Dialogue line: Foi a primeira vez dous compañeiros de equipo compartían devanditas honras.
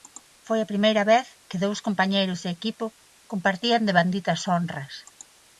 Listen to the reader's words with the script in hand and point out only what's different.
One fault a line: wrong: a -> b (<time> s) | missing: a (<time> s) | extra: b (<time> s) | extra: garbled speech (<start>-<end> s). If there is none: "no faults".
extra: que (1.5 s)